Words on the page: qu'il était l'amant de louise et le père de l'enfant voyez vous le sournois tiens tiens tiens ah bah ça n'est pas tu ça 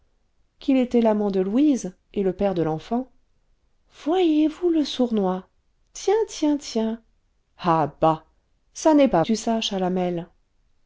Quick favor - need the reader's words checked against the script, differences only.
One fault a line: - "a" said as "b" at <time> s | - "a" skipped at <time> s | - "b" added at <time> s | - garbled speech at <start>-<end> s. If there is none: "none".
none